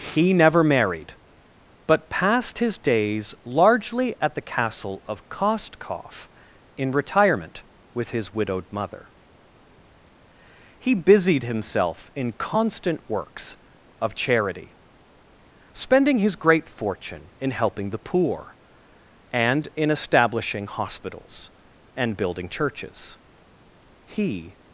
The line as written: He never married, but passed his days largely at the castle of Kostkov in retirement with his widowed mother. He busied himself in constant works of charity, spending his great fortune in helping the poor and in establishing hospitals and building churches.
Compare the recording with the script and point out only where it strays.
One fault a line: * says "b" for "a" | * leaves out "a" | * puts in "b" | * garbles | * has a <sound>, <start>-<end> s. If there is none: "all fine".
* puts in "He"